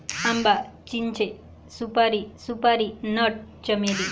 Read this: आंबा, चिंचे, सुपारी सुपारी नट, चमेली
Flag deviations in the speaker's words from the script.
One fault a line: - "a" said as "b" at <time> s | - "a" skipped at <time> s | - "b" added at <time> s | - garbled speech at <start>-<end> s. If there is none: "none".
none